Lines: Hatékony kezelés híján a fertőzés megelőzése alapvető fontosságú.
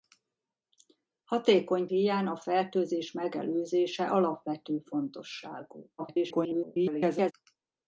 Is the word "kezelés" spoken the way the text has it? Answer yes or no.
no